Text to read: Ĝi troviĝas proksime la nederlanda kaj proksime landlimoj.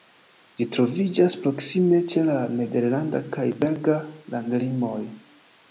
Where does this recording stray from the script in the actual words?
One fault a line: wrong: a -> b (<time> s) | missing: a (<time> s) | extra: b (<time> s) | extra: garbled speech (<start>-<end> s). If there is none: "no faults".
extra: ĉe (2.1 s)
wrong: proksime -> belga (3.6 s)